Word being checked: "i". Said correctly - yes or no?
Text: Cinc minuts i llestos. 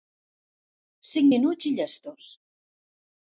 yes